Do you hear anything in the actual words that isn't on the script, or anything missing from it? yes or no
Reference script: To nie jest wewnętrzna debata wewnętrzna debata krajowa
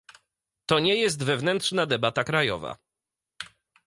yes